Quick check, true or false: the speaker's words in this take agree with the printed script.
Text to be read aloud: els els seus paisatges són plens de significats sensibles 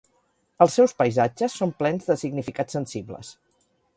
false